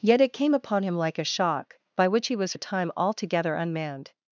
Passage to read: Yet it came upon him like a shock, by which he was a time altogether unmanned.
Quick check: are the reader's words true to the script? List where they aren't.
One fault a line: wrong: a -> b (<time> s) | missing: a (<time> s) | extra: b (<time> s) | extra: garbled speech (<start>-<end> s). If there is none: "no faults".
no faults